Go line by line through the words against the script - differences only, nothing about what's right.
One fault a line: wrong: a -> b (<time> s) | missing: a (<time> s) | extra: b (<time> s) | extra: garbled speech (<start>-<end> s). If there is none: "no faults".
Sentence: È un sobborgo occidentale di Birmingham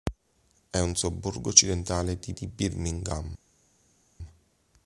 extra: di (2.3 s)